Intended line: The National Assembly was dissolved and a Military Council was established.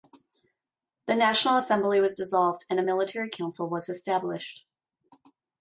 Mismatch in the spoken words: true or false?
false